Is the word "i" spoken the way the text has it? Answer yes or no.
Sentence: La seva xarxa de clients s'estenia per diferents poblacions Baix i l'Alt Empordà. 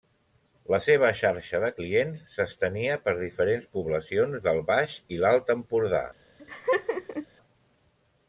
yes